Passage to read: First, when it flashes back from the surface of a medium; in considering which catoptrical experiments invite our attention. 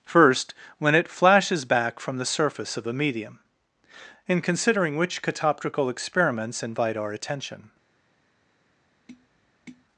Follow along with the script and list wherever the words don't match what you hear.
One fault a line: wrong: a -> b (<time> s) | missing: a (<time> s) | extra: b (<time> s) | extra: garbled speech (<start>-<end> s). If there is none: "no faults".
no faults